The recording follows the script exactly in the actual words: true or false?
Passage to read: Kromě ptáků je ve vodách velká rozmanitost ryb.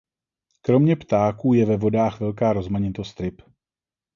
true